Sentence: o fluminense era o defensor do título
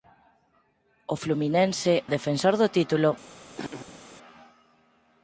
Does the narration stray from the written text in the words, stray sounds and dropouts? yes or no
yes